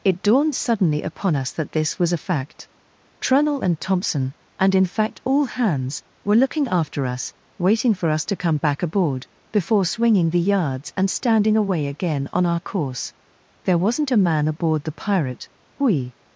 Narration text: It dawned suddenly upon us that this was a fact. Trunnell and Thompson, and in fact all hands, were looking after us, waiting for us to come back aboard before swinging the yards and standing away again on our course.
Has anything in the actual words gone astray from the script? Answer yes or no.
yes